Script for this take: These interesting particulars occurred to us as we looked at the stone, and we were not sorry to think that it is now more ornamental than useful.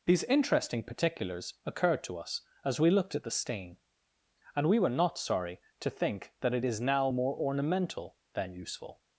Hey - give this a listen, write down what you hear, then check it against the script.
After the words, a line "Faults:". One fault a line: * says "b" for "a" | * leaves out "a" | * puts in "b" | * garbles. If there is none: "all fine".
These interesting particulars occurred to us as we looked at the stain, and we were not sorry to think that it is now more ornamental than useful.
Faults:
* says "stain" for "stone"